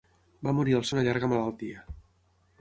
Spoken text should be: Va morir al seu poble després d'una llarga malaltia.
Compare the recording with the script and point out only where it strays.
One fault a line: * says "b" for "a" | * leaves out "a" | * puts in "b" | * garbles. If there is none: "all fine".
* leaves out "seu poble després"